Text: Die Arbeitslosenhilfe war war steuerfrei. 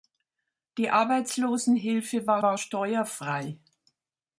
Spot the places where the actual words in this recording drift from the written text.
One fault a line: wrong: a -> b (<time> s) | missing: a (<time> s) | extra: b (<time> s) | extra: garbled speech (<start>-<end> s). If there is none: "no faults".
no faults